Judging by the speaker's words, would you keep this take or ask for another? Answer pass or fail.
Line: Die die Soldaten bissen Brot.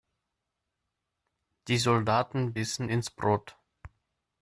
fail